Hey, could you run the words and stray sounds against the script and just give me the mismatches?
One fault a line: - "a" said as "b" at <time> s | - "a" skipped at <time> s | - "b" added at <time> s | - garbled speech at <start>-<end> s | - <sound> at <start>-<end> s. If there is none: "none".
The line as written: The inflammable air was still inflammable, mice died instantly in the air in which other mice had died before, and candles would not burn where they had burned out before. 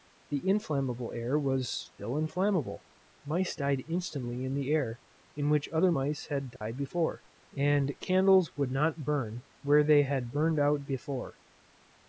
- dropout at 6.6-6.6 s